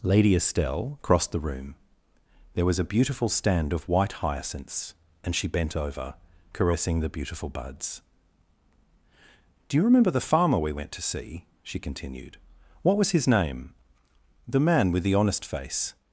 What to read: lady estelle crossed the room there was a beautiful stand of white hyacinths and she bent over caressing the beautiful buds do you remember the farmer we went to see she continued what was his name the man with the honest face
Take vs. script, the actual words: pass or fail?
pass